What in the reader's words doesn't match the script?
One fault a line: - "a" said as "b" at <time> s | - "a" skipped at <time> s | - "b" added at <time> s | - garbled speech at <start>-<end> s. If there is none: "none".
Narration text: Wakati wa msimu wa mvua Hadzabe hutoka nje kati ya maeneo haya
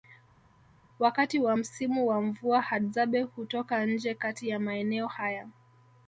none